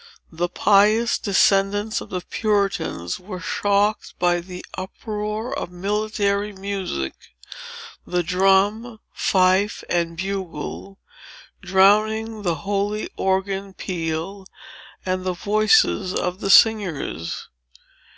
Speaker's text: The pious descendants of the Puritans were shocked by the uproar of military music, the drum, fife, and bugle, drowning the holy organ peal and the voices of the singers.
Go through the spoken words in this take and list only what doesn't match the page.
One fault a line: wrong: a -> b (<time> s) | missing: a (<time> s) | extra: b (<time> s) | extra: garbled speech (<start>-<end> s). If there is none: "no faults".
no faults